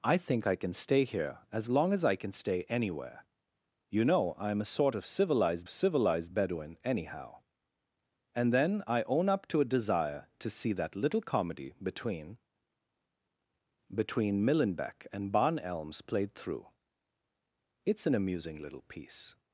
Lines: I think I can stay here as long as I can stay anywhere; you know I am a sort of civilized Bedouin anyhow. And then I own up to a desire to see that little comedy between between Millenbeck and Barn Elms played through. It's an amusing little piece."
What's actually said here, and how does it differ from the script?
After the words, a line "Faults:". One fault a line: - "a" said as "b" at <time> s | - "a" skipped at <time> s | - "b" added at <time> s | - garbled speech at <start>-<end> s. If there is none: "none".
I think I can stay here as long as I can stay anywhere; you know I am a sort of civilized civilized Bedouin anyhow. And then I own up to a desire to see that little comedy between between Millenbeck and Barn Elms played through. It's an amusing little piece."
Faults:
- "civilized" added at 5.7 s